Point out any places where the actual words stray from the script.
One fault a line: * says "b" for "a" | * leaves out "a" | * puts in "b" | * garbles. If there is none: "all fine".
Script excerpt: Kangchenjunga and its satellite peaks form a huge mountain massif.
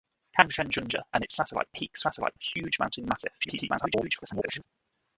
* says "satellite" for "form"
* garbles